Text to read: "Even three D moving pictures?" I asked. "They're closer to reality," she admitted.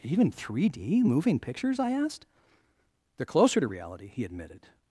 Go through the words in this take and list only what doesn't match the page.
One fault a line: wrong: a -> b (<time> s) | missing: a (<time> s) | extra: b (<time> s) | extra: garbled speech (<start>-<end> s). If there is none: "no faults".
wrong: she -> he (4.1 s)